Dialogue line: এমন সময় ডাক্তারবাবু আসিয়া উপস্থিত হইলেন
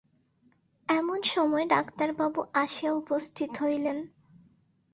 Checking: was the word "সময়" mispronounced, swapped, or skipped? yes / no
no